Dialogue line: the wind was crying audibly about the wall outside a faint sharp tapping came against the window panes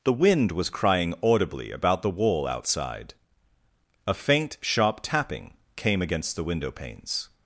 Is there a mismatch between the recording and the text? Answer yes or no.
no